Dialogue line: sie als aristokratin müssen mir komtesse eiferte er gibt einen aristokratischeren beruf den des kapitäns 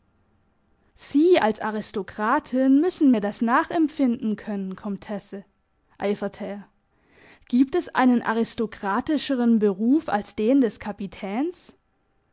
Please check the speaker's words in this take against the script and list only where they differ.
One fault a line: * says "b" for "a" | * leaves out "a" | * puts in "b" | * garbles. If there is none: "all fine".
* puts in "das nachempfinden können"
* puts in "es"
* puts in "als"